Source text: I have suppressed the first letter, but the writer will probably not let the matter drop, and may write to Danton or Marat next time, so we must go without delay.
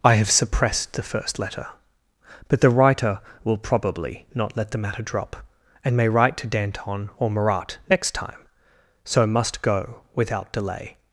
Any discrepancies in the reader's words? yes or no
yes